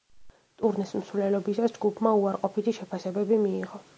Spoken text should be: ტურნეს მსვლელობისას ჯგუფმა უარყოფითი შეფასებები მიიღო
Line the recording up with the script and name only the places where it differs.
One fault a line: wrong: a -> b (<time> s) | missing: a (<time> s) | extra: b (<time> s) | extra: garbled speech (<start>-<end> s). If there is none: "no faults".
no faults